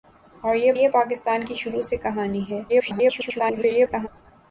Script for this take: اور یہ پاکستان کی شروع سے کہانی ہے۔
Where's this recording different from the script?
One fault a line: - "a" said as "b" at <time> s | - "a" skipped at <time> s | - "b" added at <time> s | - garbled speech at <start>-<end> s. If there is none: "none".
- "یہ" added at 0.7 s
- garbled speech at 2.7-4.1 s